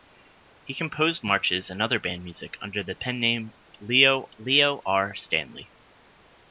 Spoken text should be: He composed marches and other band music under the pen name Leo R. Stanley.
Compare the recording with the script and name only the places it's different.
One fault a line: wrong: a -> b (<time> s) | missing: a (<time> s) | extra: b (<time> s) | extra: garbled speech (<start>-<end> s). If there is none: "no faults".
extra: Leo (4.4 s)